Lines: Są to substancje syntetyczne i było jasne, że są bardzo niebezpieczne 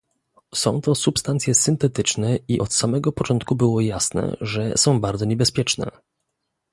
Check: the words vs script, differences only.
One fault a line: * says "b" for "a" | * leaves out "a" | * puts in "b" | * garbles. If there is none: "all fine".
* puts in "od samego początku"